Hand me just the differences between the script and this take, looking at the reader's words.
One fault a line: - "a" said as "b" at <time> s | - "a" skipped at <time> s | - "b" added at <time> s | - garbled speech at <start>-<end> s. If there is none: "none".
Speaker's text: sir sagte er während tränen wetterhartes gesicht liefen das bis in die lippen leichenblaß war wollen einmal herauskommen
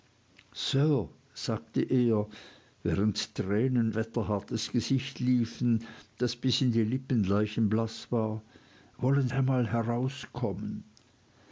none